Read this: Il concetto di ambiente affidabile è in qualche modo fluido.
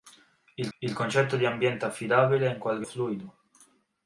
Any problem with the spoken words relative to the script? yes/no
yes